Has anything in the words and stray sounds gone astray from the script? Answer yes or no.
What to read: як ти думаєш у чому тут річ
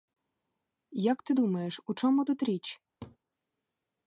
yes